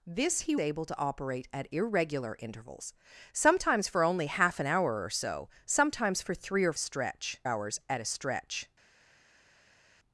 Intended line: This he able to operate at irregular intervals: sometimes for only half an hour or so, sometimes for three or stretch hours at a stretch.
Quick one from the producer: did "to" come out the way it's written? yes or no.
yes